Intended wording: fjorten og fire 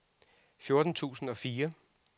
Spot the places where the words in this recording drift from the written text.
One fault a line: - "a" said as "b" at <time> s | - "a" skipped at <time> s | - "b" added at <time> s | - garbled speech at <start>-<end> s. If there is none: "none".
- "tusind" added at 0.9 s